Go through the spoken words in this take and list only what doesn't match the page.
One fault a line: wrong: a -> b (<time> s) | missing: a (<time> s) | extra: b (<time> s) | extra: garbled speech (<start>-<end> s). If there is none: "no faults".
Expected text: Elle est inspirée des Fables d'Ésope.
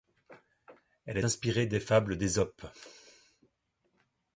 missing: est (1.2 s)